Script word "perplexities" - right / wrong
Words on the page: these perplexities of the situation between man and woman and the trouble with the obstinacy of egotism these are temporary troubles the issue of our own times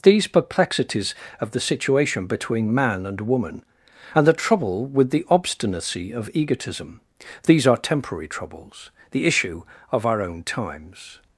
right